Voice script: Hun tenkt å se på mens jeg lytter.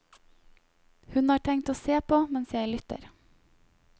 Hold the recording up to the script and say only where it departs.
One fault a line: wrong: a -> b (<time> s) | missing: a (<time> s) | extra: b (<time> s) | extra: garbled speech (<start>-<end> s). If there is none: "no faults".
extra: har (1.3 s)